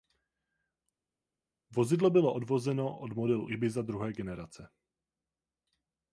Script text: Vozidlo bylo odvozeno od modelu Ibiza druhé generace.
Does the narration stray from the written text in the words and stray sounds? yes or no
no